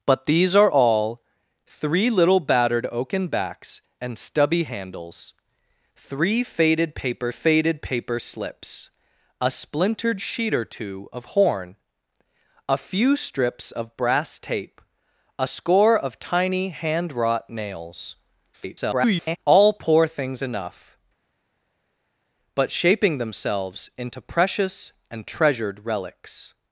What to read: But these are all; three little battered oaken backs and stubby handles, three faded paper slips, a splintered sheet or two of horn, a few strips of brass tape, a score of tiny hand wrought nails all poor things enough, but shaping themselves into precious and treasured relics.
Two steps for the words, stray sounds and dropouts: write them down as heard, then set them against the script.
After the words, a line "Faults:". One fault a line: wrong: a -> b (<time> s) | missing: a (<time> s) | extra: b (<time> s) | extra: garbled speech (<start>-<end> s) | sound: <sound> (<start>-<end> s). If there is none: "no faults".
But these are all; three little battered oaken backs and stubby handles, three faded paper faded paper slips, a splintered sheet or two of horn, a few strips of brass tape, a score of tiny hand wrought nails [garbled] all poor things enough, but shaping themselves into precious and treasured relics.
Faults:
extra: faded paper (7.3 s)
extra: garbled speech (18.5-19.4 s)